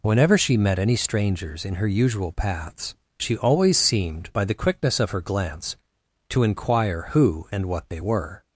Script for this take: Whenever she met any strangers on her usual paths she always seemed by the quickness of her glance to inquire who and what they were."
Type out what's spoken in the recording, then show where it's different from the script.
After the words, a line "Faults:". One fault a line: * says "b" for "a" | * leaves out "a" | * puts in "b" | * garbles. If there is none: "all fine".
Whenever she met any strangers in her usual paths she always seemed by the quickness of her glance to inquire who and what they were."
Faults:
* says "in" for "on"